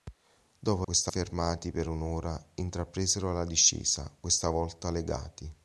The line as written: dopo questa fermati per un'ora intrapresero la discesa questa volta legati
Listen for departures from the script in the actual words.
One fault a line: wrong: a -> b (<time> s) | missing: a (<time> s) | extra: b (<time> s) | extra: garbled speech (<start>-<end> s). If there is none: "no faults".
no faults